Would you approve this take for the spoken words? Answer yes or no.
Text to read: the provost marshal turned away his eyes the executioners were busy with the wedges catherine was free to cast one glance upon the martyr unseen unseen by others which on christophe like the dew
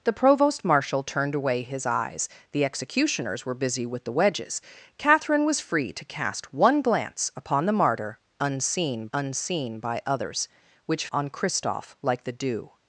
yes